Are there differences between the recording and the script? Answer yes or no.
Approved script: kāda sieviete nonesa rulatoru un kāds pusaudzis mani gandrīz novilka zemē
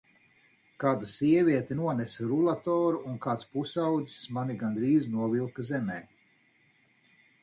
no